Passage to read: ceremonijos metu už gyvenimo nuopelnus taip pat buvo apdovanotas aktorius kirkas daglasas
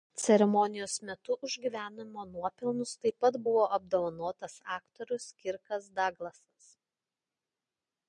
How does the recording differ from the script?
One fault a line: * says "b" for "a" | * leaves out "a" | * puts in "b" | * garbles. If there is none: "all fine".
all fine